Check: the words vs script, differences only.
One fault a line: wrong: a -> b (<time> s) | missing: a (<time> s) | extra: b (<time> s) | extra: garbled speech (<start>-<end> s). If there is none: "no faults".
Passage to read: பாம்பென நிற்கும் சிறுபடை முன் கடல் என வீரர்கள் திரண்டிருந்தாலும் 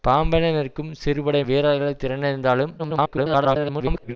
missing: முன் கடல் என (1.4 s)
extra: garbled speech (2.8-4.2 s)